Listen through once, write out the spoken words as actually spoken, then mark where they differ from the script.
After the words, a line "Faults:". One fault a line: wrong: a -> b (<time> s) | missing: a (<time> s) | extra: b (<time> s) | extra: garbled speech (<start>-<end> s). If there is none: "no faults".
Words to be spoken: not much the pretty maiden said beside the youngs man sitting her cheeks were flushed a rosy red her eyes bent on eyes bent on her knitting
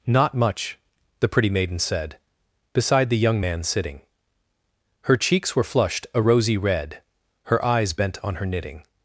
not much the pretty maiden said beside the young man sitting her cheeks were flushed a rosy red her eyes bent on her knitting
Faults:
wrong: youngs -> young (3.2 s)
missing: eyes bent on (8.4 s)